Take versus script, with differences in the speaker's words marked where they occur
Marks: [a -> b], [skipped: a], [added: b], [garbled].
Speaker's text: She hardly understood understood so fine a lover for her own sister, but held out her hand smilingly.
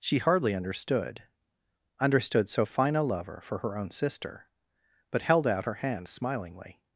She hardly understood understood so fine a lover for her own sister, but held out her hand smilingly.